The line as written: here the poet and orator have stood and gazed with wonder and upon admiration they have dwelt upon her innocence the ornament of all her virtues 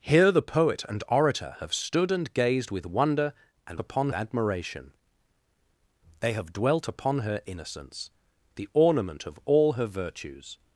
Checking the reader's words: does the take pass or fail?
pass